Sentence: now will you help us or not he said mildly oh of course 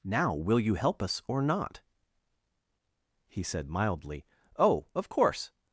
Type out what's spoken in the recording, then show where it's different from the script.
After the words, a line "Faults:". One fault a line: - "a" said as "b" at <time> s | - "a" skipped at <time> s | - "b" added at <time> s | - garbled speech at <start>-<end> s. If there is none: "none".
now will you help us or not he said mildly oh of course
Faults:
none